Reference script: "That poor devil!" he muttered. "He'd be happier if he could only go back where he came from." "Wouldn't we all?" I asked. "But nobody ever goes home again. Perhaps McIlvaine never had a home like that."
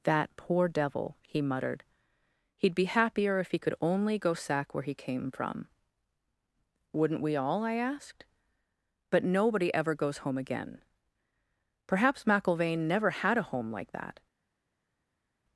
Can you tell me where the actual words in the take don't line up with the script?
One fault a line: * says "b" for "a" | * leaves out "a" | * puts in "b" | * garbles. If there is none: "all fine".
* says "sack" for "back"